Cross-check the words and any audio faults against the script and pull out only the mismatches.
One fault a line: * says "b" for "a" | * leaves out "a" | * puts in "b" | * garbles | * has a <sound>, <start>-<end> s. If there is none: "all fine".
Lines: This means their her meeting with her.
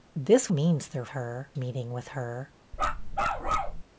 * has a bark, 2.7-3.8 s